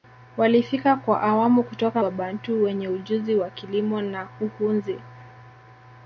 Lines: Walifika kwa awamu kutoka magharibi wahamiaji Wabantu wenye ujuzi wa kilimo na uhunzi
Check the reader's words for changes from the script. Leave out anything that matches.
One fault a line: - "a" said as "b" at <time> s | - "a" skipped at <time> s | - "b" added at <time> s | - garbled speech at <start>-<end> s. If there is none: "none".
- "magharibi wahamiaji" skipped at 2.0 s